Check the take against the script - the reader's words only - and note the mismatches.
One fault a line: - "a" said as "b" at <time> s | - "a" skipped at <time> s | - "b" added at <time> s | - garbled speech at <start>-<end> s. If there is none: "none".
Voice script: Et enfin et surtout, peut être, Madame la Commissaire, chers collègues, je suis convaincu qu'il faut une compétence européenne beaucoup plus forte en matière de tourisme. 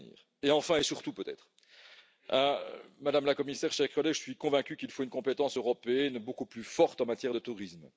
none